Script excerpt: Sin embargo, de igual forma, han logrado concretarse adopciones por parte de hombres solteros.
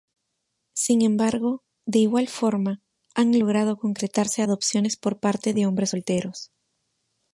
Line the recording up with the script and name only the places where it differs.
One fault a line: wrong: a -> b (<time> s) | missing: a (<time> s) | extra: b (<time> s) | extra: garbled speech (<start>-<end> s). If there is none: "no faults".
no faults